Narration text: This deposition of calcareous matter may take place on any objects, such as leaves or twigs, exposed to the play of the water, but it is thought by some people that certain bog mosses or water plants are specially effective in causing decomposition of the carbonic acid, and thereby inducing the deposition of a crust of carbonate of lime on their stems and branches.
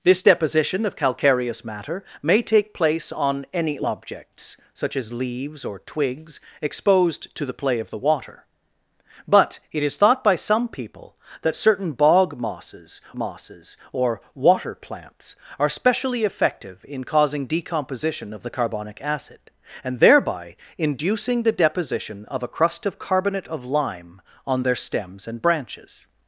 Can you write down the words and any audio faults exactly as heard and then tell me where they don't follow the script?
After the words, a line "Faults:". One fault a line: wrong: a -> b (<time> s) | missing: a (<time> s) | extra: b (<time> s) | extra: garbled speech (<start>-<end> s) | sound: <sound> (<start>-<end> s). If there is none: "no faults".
This deposition of calcareous matter may take place on any objects, such as leaves or twigs, exposed to the play of the water, but it is thought by some people that certain bog mosses mosses or water plants are specially effective in causing decomposition of the carbonic acid, and thereby inducing the deposition of a crust of carbonate of lime on their stems and branches.
Faults:
extra: mosses (13.2 s)